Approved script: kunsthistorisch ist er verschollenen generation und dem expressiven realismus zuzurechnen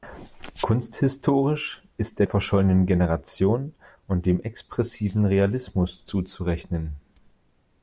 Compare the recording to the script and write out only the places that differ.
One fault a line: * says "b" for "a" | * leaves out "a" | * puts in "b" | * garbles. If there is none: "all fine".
all fine